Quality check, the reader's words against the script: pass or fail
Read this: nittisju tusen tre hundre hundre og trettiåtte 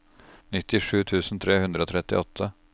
fail